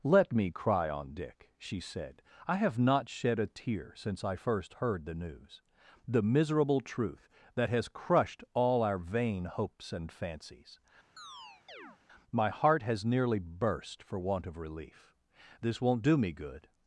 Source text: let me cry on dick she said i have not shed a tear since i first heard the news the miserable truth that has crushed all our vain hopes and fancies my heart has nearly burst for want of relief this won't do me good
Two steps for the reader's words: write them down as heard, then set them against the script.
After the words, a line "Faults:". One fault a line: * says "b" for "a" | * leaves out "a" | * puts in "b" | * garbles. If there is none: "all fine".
let me cry on dick she said i have not shed a tear since i first heard the news the miserable truth that has crushed all our vain hopes and fancies my heart has nearly burst for want of relief this won't do me good
Faults:
all fine